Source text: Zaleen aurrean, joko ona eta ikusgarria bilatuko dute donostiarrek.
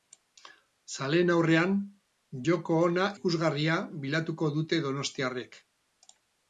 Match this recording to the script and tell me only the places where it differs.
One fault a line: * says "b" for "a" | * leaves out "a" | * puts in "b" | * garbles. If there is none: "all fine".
* leaves out "eta"